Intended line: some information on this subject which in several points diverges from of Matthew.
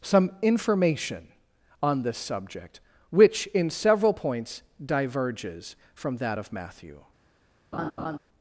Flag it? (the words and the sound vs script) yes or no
yes